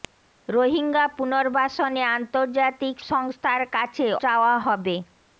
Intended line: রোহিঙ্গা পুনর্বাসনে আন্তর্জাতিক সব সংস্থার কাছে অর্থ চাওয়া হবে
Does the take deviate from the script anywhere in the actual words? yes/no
yes